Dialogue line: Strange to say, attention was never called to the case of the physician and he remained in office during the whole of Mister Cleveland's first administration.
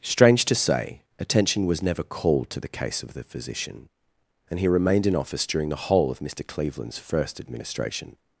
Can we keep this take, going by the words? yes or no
yes